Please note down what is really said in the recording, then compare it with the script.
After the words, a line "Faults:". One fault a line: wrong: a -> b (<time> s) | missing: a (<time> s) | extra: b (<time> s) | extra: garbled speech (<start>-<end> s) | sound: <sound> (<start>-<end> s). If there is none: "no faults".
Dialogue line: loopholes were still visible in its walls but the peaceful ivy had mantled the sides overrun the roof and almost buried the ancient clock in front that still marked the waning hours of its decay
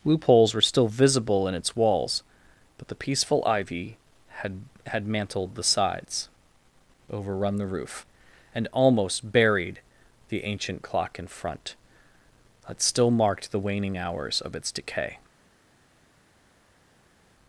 loopholes were still visible in its walls but the peaceful ivy had had mantled the sides overrun the roof and almost buried the ancient clock in front that still marked the waning hours of its decay
Faults:
extra: had (4.9 s)